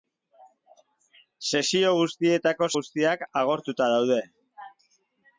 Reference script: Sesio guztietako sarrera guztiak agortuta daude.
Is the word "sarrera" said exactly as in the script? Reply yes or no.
no